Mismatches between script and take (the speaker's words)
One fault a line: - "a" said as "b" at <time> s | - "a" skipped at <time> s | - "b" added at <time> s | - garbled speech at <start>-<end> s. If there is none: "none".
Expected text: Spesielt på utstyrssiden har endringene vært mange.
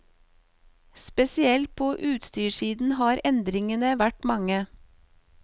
none